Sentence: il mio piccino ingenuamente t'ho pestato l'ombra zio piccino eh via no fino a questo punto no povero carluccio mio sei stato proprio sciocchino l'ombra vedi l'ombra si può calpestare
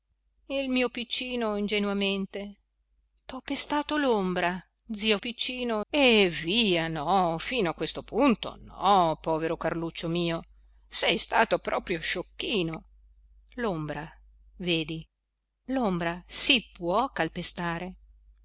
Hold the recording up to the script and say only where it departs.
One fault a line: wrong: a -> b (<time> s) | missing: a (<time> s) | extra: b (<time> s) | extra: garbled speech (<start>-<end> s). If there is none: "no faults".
no faults